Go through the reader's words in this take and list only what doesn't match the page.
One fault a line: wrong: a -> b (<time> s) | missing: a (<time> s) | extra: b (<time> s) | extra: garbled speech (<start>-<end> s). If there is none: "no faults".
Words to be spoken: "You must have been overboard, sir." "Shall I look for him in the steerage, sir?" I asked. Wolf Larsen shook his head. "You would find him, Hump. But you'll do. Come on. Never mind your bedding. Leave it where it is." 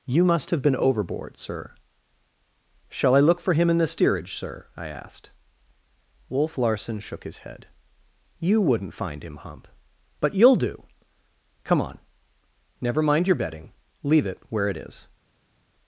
wrong: would -> wouldn't (8.6 s)